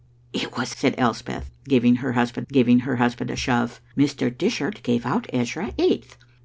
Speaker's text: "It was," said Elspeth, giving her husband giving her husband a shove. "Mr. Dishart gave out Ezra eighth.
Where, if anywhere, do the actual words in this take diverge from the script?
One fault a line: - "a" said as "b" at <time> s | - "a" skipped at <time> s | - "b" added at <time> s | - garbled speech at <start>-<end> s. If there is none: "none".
none